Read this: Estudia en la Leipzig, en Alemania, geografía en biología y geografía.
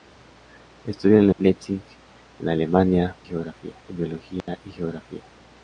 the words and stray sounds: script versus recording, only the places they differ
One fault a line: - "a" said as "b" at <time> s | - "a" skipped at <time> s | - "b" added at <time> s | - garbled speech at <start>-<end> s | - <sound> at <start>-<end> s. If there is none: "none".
- dropout at 4.4-4.5 s